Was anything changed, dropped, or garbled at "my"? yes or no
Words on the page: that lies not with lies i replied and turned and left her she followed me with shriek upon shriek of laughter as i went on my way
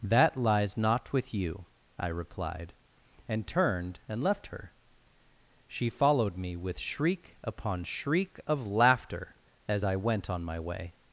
no